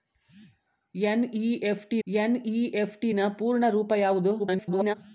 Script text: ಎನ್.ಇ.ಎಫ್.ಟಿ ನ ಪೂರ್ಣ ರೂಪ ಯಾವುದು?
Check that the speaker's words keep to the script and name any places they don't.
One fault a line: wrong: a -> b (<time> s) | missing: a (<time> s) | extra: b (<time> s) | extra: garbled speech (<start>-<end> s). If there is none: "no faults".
extra: ಎನ್.ಇ.ಎಫ್.ಟಿ (2.1 s)
extra: garbled speech (4.4-4.9 s)